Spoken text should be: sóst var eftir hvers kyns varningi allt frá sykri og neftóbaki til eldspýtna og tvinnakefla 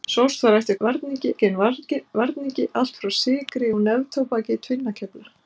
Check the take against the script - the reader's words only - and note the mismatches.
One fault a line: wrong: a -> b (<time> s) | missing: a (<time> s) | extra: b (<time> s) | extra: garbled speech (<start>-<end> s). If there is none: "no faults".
wrong: hvers -> varningi (0.9 s)
missing: til eldspýtna og (4.6 s)